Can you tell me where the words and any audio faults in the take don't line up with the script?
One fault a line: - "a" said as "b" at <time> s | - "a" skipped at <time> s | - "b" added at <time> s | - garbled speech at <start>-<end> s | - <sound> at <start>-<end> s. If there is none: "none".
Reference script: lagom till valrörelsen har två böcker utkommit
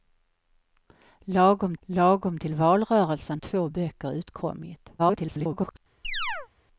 - "lagom" added at 1.8 s
- "har" skipped at 3.4 s
- garbled speech at 5.0-5.8 s
- chirp at 6.0-6.5 s